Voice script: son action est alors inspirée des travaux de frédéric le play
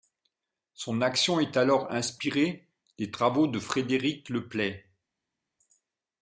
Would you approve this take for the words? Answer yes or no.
yes